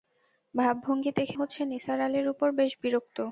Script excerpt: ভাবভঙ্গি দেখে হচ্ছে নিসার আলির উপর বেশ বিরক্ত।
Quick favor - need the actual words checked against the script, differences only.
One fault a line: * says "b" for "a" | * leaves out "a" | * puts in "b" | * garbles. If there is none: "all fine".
all fine